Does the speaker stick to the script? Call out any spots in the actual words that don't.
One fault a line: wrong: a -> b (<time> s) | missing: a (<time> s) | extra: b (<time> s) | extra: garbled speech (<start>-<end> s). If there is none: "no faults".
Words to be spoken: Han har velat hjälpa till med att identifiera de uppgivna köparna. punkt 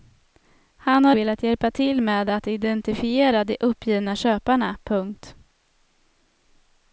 no faults